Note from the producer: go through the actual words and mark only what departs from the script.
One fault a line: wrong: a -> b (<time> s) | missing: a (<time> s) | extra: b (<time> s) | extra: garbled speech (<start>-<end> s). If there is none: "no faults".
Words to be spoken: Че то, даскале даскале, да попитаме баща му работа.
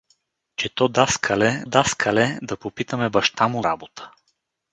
no faults